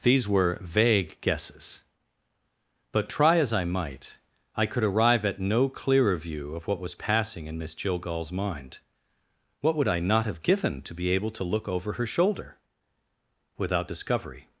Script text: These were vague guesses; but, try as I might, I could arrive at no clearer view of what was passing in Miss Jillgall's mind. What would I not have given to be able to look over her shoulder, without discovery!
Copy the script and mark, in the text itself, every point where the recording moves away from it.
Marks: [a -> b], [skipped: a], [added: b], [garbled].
These were vague guesses; but, try as I might, I could arrive at no clearer view of what was passing in Miss Jillgall's mind. What would I not have given to be able to look over her shoulder, without discovery!